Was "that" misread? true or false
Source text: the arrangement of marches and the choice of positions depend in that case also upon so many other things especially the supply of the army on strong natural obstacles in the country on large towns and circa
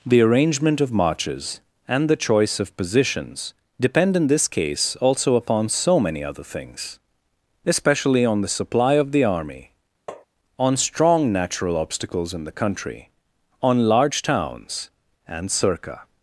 true